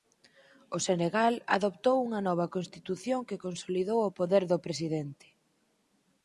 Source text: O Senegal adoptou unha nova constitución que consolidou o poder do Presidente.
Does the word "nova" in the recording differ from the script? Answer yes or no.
no